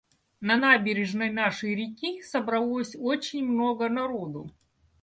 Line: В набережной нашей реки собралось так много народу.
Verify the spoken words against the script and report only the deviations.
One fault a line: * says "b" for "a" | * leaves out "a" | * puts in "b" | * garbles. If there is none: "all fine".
* says "На" for "В"
* says "очень" for "так"